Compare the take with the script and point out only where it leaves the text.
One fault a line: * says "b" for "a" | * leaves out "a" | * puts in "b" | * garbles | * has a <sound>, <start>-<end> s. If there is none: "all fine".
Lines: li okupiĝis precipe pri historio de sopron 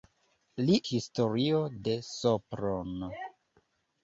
* leaves out "okupiĝis precipe pri"